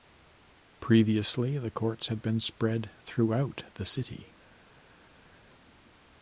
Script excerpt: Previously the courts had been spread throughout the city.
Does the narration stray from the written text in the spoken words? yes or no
no